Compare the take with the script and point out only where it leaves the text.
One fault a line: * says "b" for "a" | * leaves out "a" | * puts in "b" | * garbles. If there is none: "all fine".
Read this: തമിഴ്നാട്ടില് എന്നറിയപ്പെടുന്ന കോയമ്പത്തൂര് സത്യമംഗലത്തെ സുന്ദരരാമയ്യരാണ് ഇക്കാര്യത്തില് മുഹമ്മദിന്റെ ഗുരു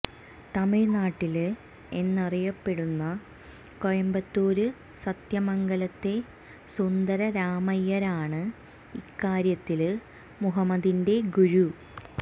all fine